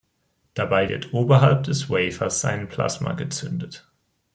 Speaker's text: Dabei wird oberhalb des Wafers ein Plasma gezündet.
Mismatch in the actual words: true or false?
false